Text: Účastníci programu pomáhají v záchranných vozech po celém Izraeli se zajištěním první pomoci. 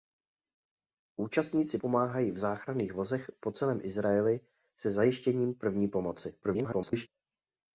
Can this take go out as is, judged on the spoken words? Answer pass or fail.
fail